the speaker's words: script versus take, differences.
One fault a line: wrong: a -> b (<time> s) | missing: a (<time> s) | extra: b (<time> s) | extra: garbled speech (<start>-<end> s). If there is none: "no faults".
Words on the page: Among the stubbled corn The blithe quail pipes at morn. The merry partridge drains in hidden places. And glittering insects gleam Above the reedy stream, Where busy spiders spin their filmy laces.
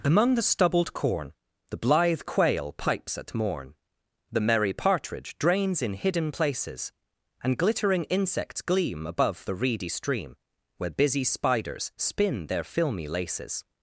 no faults